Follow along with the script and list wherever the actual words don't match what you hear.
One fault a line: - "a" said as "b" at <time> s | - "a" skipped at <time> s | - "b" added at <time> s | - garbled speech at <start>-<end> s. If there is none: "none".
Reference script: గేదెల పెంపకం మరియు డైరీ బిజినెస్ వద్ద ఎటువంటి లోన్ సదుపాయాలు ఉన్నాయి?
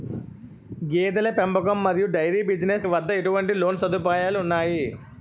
none